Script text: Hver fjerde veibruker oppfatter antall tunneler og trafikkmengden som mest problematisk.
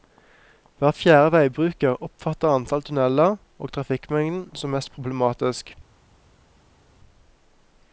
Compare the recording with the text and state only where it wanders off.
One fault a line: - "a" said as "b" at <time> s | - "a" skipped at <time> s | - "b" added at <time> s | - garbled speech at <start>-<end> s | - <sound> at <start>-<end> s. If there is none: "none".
none